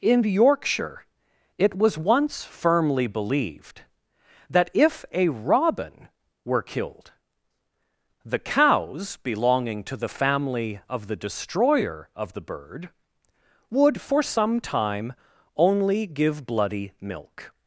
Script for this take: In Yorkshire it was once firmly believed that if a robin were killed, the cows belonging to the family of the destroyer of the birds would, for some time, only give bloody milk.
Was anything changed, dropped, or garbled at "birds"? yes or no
yes